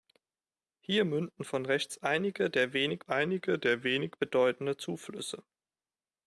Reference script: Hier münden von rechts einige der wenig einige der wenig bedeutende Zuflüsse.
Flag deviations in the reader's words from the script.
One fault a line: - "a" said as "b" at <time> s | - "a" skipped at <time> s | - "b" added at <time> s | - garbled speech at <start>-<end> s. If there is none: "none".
none